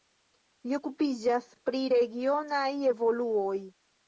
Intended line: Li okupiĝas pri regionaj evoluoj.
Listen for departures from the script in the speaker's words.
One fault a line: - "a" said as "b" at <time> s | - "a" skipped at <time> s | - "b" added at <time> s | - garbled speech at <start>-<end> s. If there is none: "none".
none